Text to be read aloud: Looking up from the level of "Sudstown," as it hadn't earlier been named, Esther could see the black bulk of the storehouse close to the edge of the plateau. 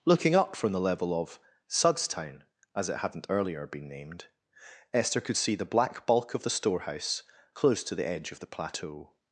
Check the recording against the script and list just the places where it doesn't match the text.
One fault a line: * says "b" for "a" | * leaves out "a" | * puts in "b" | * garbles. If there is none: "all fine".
all fine